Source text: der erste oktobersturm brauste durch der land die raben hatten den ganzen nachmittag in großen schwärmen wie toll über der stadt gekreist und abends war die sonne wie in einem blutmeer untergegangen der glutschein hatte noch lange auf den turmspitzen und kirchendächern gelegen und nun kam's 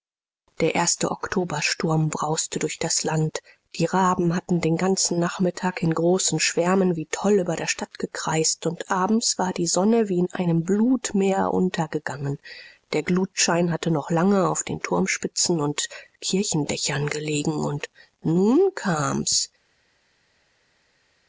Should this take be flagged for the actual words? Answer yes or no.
yes